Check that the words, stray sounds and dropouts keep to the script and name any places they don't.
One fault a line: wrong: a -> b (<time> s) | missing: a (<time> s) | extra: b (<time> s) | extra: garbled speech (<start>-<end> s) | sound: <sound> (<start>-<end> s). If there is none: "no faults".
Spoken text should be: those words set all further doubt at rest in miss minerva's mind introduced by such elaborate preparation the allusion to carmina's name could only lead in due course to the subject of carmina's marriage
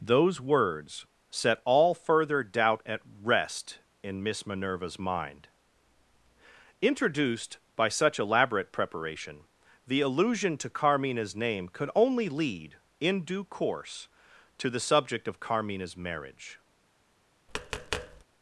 sound: tap (17.5-18.2 s)